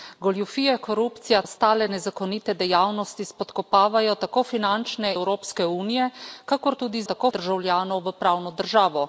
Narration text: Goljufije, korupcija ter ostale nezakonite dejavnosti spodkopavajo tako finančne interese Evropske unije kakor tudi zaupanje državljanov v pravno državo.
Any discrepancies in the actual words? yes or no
yes